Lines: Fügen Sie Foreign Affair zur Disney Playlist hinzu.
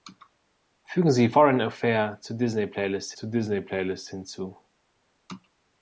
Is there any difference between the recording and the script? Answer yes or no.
yes